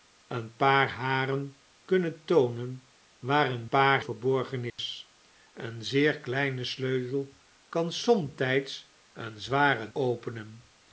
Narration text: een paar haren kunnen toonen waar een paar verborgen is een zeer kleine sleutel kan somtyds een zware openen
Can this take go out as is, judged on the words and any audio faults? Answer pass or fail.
fail